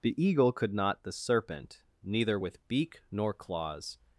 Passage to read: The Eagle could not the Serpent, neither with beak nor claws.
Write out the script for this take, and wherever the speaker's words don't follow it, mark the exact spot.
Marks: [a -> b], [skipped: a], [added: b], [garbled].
The Eagle could not the Serpent, neither with beak nor claws.